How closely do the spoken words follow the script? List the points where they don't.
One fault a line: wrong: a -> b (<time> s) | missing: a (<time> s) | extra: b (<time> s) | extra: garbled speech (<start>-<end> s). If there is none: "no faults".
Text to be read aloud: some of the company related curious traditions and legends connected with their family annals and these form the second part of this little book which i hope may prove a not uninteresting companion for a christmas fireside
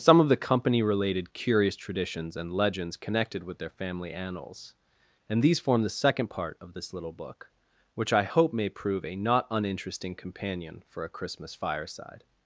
no faults